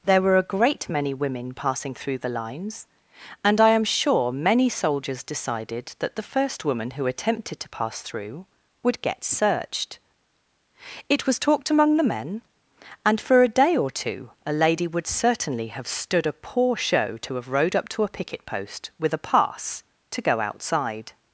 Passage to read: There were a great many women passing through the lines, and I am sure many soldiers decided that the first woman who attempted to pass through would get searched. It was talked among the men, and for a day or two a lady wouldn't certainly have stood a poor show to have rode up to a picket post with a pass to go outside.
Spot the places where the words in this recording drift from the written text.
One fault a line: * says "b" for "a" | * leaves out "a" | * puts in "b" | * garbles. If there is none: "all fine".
* says "would" for "wouldn't"